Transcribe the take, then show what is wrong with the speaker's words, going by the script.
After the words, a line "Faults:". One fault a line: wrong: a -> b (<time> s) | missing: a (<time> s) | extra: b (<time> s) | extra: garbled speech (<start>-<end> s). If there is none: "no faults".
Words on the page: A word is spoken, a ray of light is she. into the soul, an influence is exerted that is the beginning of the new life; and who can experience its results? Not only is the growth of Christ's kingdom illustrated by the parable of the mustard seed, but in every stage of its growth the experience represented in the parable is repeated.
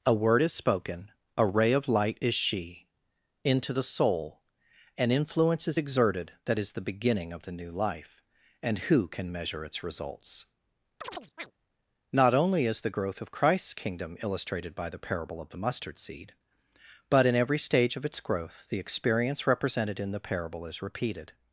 A word is spoken, a ray of light is she. into the soul, an influence is exerted that is the beginning of the new life; and who can measure its results? Not only is the growth of Christ's kingdom illustrated by the parable of the mustard seed, but in every stage of its growth the experience represented in the parable is repeated.
Faults:
wrong: experience -> measure (9.3 s)